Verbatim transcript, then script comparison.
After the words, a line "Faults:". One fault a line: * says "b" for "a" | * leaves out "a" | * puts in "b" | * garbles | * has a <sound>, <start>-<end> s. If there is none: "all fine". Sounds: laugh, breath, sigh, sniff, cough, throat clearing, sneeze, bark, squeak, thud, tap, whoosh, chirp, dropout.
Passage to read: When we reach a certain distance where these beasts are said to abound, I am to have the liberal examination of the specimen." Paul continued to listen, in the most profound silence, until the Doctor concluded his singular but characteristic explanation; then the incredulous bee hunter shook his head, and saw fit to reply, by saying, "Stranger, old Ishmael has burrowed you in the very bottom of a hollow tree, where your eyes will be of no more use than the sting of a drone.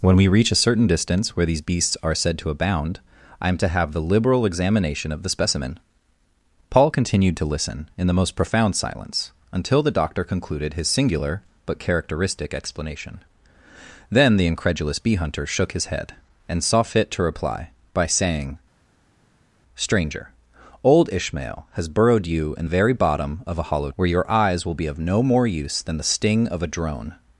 When we reach a certain distance where these beasts are said to abound, I am to have the liberal examination of the specimen." Paul continued to listen, in the most profound silence, until the Doctor concluded his singular but characteristic explanation; then the incredulous bee hunter shook his head, and saw fit to reply, by saying, "Stranger, old Ishmael has burrowed you in very bottom of a hollow where your eyes will be of no more use than the sting of a drone.
Faults:
* leaves out "the"
* leaves out "tree"